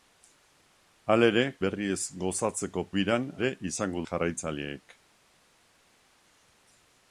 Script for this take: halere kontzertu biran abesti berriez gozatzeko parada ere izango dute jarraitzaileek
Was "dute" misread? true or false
true